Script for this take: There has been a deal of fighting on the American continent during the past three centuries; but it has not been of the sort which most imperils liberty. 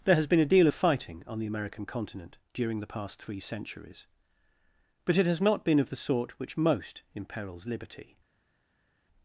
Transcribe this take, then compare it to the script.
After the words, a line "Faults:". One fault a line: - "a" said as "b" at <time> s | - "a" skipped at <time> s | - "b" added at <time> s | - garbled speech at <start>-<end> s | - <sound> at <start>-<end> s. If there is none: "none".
There has been a deal of fighting on the American continent during the past three centuries; but it has not been of the sort which most imperils liberty.
Faults:
none